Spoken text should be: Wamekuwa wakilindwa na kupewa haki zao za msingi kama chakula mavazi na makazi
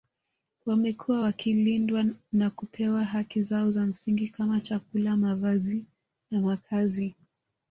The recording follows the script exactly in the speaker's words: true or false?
true